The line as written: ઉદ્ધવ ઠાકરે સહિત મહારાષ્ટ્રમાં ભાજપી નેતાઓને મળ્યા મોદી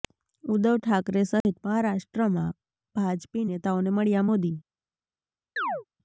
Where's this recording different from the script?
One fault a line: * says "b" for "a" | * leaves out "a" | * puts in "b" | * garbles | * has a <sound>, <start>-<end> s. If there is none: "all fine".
* has a dropout, 1.4-1.4 s
* has a chirp, 5.6-5.8 s